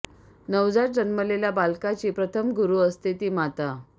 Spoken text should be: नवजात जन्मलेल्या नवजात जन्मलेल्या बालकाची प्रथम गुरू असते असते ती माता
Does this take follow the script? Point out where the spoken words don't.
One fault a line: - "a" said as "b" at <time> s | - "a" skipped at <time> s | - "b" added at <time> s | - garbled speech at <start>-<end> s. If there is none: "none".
- "नवजात जन्मलेल्या" skipped at 1.5 s
- "असते" skipped at 3.1 s